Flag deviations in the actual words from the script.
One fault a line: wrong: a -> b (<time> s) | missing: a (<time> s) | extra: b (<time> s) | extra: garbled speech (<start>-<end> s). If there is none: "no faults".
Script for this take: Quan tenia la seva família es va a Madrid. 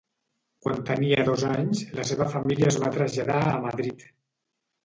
extra: dos anys (1.3 s)
extra: traslladar (3.0 s)